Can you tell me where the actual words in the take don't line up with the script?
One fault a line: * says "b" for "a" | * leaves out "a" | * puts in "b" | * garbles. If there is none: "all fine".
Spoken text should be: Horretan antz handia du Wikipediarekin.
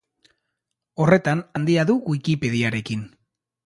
* leaves out "antz"